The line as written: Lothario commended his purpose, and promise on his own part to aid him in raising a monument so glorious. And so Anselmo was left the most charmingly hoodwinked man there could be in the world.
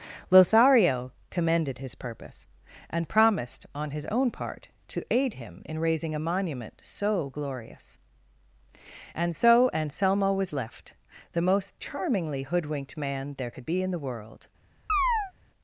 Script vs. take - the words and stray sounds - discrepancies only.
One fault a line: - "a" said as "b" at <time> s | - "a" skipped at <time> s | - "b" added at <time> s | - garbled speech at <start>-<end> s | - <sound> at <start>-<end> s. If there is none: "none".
- "promise" said as "promised" at 3.1 s
- chirp at 14.9-15.3 s